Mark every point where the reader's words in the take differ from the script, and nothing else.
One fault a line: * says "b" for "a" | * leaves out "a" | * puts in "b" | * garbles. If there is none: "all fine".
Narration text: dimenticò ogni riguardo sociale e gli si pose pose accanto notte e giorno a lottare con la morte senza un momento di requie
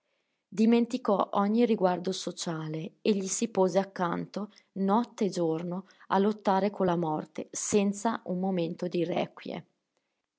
* leaves out "pose"